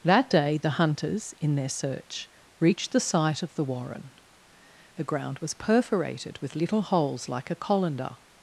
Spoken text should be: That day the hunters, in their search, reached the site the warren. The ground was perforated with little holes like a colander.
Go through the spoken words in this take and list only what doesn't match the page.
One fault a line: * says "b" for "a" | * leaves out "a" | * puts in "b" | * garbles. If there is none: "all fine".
* puts in "of"